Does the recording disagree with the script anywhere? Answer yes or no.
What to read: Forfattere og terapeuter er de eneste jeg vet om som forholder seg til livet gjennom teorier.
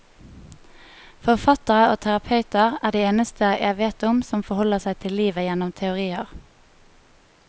no